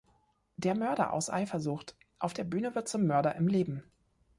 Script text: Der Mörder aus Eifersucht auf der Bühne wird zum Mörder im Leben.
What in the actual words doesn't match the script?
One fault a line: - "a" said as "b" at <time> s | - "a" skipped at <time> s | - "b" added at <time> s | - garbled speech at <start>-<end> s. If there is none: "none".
none